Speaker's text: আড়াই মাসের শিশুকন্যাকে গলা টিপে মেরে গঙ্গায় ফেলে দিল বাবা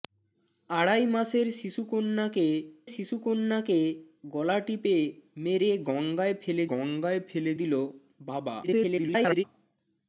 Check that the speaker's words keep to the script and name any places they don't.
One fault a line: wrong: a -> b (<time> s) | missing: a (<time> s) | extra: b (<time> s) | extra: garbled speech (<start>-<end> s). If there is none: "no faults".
extra: শিশুকন্যাকে (2.9 s)
extra: গঙ্গায় ফেলে (6.7 s)
extra: garbled speech (8.6-9.4 s)